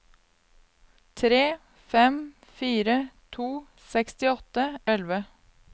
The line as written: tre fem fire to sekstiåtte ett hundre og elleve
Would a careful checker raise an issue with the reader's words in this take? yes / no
yes